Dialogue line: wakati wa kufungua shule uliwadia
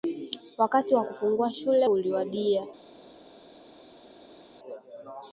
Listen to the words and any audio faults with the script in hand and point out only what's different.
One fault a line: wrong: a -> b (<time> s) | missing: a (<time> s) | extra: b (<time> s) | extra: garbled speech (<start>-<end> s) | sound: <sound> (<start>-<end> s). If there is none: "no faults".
no faults